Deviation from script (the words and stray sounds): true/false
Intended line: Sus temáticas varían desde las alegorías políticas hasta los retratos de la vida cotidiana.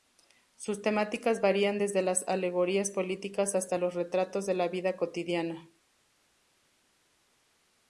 false